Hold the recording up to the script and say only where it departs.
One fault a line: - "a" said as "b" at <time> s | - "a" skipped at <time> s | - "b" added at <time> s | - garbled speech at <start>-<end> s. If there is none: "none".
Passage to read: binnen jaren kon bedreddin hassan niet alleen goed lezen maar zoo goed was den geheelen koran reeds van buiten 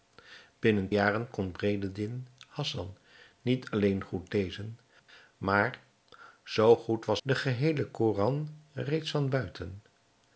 none